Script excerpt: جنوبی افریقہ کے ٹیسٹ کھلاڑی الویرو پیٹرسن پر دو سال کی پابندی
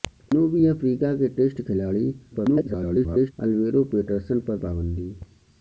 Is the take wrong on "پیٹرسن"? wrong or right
right